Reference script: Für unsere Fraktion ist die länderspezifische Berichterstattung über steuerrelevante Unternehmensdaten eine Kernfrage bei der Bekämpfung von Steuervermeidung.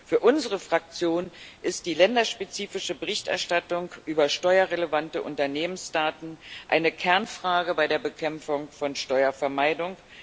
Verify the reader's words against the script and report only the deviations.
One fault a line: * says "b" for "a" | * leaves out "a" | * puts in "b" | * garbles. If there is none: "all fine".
all fine